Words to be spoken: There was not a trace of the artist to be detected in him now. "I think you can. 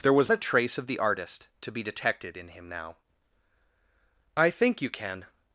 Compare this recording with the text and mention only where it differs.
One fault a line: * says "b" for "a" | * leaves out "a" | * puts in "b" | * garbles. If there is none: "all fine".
* leaves out "not"